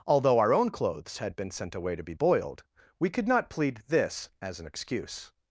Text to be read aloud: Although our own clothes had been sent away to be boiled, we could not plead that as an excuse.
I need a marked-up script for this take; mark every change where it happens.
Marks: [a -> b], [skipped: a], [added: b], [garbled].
Although our own clothes had been sent away to be boiled, we could not plead [that -> this] as an excuse.